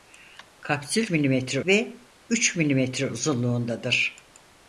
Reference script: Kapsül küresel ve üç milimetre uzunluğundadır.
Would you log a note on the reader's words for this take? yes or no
yes